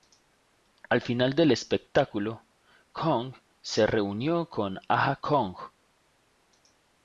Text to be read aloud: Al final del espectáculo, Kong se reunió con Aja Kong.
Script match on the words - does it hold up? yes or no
yes